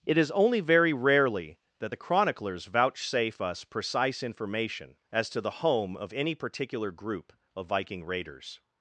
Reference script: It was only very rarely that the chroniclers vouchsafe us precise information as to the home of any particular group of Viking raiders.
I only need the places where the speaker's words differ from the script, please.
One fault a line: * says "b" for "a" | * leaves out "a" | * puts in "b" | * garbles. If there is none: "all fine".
* says "is" for "was"